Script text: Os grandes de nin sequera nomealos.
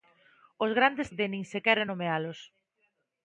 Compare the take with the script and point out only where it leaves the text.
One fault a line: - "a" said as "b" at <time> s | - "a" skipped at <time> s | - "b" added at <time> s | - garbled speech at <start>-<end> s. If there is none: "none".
none